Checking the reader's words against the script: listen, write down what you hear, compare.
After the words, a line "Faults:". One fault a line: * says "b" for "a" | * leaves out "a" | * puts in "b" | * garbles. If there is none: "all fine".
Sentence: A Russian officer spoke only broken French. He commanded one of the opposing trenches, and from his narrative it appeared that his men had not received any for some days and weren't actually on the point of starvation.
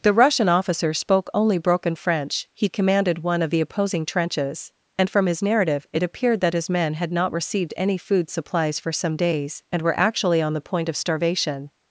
The Russian officer spoke only broken French. He commanded one of the opposing trenches, and from his narrative it appeared that his men had not received any food supplies for some days and were actually on the point of starvation.
Faults:
* says "The" for "A"
* puts in "food supplies"
* says "were" for "weren't"